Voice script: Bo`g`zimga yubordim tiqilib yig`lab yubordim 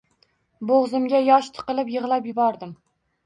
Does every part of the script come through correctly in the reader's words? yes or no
no